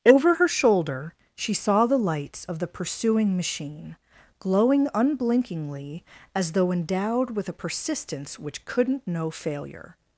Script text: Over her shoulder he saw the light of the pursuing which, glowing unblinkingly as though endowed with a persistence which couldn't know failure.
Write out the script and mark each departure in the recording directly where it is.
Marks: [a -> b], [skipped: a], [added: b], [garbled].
Over her shoulder [he -> she] saw the [light -> lights] of the pursuing [which, -> machine] glowing unblinkingly as though endowed with a persistence which couldn't know failure.